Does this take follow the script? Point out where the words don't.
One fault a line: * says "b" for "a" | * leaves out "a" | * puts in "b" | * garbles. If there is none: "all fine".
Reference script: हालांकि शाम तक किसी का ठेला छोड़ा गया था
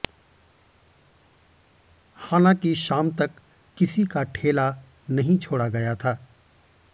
* puts in "नहीं"